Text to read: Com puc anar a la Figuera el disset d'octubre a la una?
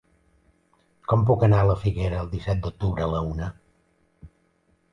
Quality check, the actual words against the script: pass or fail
pass